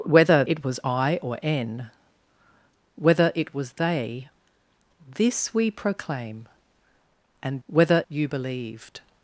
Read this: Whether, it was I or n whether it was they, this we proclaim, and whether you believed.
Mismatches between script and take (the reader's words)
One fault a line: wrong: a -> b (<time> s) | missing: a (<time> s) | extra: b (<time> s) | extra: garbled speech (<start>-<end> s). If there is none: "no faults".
no faults